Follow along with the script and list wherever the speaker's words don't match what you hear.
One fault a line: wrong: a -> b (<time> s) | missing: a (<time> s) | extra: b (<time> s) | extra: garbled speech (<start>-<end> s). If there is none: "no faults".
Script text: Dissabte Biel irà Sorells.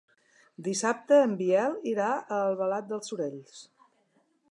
extra: en (1.2 s)
extra: a Albalat dels (2.1 s)